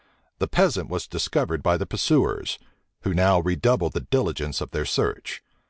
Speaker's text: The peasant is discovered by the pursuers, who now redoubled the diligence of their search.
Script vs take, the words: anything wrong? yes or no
yes